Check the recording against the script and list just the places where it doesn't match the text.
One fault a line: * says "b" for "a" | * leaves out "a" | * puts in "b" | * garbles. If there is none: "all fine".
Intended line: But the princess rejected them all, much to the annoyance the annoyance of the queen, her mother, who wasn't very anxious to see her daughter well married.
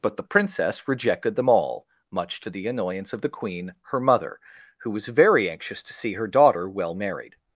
* leaves out "the annoyance"
* says "was" for "wasn't"